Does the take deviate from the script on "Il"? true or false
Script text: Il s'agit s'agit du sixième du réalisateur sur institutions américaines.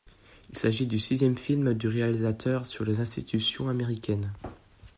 false